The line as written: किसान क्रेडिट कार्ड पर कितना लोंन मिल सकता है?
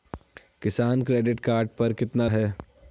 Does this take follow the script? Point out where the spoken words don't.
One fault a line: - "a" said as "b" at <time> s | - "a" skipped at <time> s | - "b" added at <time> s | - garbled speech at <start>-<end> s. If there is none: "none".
- "लोंन मिल सकता" skipped at 2.3 s